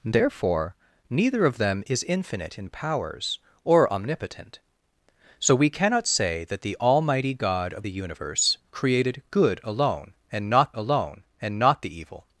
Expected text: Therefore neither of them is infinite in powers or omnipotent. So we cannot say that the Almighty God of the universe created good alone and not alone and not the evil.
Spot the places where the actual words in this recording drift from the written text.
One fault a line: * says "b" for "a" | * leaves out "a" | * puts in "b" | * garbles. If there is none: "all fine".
all fine